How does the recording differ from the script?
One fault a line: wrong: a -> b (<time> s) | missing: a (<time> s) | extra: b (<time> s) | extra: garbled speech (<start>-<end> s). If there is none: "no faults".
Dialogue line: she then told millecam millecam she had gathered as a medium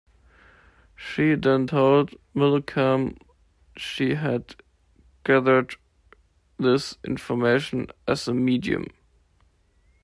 missing: millecam (3.2 s)
extra: this information (6.6 s)